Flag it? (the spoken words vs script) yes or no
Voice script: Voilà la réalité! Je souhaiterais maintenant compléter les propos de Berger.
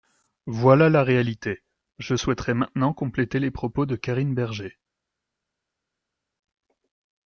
yes